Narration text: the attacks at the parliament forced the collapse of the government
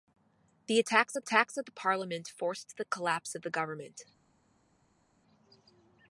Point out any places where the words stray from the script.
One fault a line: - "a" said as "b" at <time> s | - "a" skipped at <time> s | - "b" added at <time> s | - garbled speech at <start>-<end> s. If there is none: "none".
- "attacks at" added at 1.2 s